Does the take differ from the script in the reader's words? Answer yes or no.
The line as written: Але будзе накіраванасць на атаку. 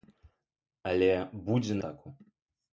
yes